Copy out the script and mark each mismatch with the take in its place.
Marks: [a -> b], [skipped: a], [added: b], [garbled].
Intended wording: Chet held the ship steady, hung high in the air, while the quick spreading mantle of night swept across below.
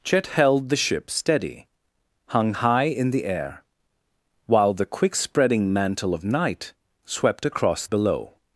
Chet held the ship steady, hung high in the air, while the quick spreading mantle of night swept across below.